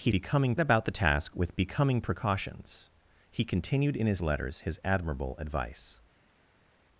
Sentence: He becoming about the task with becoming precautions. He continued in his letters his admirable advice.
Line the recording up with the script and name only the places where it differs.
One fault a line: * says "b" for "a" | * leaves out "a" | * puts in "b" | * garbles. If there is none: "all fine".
all fine